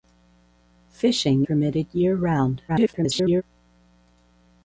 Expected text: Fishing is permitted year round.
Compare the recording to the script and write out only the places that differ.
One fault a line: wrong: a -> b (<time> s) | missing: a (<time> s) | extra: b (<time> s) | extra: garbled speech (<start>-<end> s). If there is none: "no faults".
missing: is (1.4 s)
extra: garbled speech (2.7-3.4 s)